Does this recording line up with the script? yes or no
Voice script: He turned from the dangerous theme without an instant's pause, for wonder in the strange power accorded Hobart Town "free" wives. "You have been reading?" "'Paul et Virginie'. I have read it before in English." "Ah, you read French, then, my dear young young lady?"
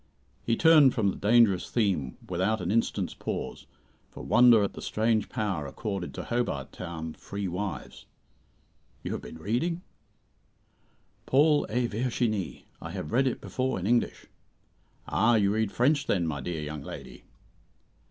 no